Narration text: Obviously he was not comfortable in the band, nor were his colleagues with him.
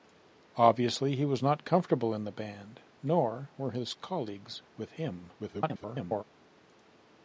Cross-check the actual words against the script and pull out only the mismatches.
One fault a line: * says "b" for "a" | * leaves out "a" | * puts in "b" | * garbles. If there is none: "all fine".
* garbles